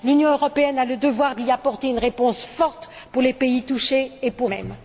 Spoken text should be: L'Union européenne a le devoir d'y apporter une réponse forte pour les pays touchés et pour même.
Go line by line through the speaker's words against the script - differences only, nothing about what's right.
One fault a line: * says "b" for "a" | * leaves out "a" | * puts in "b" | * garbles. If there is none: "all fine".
all fine